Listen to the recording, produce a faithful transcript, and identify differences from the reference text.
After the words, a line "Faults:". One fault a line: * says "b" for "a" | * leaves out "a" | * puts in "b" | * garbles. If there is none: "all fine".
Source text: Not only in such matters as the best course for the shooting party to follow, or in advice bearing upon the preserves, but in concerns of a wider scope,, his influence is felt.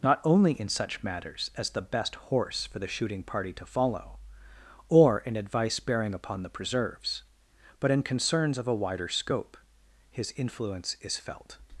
Not only in such matters as the best horse for the shooting party to follow, or in advice bearing upon the preserves, but in concerns of a wider scope,, his influence is felt.
Faults:
* says "horse" for "course"